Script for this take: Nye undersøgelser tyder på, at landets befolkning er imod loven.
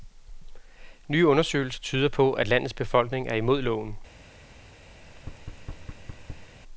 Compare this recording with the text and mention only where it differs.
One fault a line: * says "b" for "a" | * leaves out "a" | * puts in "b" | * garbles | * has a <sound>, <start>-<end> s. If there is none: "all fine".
* has a thud, 5.0-6.5 s